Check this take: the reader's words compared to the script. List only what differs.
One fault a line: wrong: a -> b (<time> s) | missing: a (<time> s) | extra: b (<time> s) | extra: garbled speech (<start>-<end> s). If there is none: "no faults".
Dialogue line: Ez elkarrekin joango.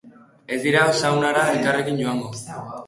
extra: dira saunara (0.6 s)